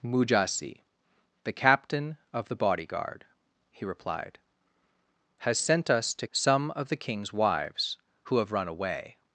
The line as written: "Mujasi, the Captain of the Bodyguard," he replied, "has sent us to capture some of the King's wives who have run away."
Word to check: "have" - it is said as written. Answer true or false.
true